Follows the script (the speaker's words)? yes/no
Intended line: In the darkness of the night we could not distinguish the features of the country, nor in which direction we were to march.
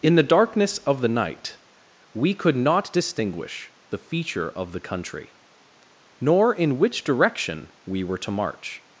no